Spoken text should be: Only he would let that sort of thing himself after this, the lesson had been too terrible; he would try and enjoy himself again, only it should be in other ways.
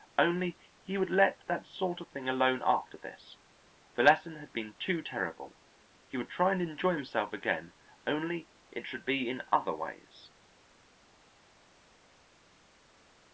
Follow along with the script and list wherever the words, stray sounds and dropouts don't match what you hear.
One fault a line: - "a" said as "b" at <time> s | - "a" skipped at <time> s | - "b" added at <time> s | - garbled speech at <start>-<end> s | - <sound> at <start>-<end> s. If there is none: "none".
- "himself" said as "alone" at 2.3 s